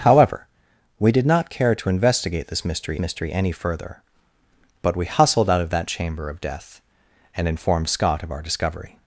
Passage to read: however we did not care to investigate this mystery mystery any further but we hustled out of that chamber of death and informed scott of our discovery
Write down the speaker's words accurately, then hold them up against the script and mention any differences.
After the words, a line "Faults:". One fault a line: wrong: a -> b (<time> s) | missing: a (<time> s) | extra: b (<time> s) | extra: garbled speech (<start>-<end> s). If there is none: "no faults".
however we did not care to investigate this mystery mystery any further but we hustled out of that chamber of death and informed scott of our discovery
Faults:
no faults